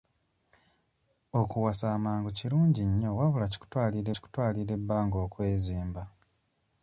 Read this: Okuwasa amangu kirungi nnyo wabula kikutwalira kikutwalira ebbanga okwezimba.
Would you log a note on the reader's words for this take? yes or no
no